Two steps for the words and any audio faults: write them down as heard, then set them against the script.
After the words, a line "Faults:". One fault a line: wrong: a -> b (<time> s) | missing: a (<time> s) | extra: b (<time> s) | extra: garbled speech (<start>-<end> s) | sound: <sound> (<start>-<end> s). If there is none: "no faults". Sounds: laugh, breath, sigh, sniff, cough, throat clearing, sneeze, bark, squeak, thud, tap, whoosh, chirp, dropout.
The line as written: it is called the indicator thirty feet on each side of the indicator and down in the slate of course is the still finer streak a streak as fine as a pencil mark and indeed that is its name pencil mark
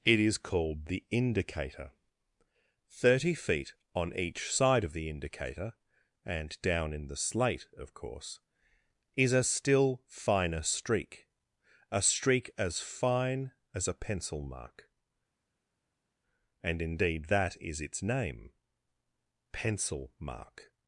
it is called the indicator thirty feet on each side of the indicator and down in the slate of course is a still finer streak a streak as fine as a pencil mark and indeed that is its name pencil mark
Faults:
wrong: the -> a (9.3 s)